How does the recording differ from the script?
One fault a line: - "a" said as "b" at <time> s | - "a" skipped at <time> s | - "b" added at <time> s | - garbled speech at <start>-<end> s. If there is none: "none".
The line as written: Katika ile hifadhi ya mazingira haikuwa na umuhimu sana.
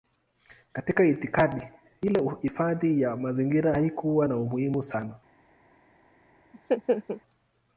- "itikadi" added at 1.1 s